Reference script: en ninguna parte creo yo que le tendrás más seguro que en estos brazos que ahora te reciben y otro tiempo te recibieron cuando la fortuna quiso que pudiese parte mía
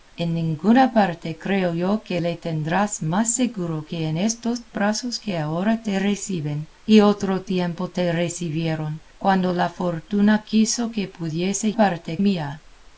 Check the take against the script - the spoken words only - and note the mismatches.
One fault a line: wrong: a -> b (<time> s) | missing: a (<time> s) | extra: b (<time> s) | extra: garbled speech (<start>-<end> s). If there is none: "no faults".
no faults